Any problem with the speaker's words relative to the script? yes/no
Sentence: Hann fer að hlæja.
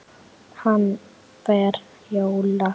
yes